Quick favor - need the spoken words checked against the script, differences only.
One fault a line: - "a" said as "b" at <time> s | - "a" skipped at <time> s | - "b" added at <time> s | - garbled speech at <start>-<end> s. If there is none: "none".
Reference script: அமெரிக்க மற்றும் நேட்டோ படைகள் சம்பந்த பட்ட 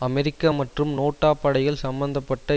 none